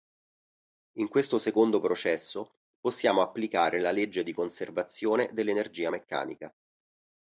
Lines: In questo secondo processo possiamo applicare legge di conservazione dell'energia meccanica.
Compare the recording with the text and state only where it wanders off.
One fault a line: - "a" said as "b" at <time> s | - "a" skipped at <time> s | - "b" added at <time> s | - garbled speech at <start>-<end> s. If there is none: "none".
- "la" added at 3.8 s